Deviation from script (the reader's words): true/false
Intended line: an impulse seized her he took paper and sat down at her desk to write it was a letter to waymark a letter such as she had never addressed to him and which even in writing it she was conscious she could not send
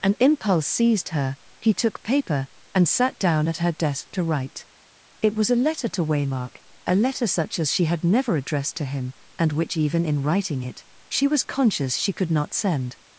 false